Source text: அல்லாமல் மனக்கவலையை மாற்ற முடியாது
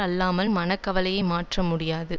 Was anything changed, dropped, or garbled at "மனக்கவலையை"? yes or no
no